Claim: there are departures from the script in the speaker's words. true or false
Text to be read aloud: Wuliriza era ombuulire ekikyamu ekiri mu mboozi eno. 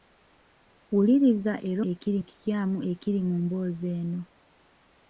true